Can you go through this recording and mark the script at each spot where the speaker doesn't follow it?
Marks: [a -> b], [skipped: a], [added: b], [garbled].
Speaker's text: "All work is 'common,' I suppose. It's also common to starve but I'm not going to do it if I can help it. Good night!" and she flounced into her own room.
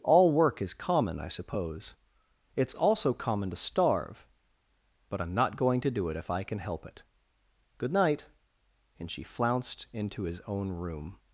"All work is 'common,' I suppose. It's also common to starve but I'm not going to do it if I can help it. Good night!" and she flounced into [her -> his] own room.